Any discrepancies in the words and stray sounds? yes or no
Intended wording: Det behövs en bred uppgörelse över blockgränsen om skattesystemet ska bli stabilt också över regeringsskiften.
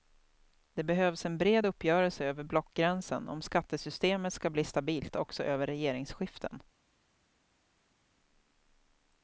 no